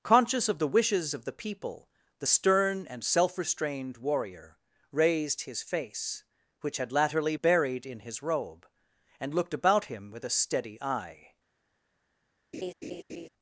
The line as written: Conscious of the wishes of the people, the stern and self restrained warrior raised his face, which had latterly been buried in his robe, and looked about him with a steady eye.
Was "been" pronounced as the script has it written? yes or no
no